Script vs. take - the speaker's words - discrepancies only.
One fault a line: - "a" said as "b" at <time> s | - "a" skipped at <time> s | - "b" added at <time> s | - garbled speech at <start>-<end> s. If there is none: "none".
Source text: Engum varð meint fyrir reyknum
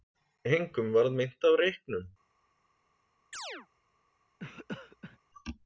- "fyrir" said as "af" at 1.5 s